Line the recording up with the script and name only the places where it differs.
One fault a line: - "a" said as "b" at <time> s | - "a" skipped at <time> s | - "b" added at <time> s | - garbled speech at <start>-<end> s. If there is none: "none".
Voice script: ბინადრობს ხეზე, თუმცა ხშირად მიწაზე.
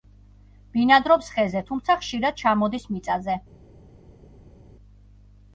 - "ჩამოდის" added at 2.4 s